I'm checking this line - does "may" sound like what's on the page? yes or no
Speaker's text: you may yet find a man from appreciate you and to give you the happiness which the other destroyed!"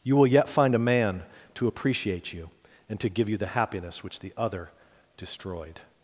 no